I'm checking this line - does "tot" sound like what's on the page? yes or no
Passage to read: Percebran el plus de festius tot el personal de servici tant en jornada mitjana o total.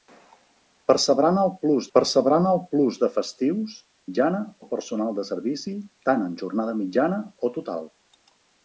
no